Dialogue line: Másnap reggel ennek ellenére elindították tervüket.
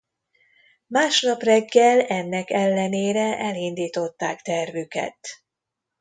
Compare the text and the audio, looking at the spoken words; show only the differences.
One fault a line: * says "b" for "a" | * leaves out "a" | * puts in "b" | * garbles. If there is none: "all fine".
all fine